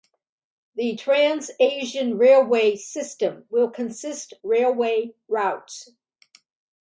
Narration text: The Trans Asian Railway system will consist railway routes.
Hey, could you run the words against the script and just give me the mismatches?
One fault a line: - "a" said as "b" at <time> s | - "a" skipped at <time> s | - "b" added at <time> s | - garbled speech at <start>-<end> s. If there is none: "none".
none